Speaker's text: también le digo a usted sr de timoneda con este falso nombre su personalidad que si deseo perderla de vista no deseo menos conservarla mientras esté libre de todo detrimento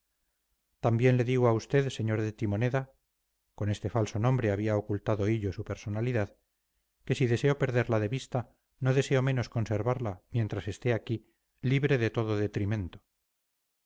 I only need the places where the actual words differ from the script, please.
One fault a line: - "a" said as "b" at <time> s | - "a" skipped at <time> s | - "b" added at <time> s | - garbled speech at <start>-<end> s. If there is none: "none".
- "había ocultado hillo" added at 4.5 s
- "aquí" added at 10.9 s